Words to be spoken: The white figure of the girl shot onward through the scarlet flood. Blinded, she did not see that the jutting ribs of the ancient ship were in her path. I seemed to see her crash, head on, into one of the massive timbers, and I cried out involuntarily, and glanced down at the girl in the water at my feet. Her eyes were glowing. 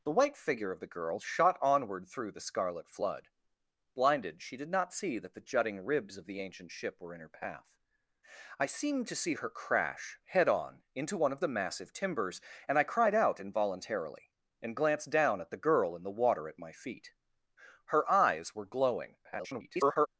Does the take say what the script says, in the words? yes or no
no